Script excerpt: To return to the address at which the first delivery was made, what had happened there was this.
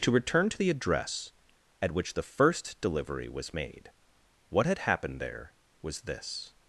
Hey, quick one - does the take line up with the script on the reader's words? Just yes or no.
yes